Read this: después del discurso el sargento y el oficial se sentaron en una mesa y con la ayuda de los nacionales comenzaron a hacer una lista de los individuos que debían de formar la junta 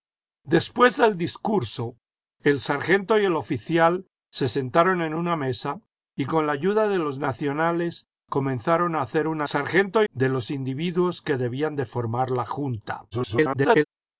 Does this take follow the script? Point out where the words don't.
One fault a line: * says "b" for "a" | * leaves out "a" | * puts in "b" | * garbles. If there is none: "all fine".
* says "sargento" for "lista"
* garbles